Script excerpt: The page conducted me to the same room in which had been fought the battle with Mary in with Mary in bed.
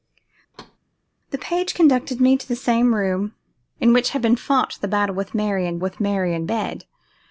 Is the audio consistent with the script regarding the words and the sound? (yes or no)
no